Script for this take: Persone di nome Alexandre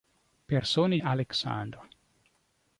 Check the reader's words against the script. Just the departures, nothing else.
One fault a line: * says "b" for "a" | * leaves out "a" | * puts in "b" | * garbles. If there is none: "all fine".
* leaves out "di nome"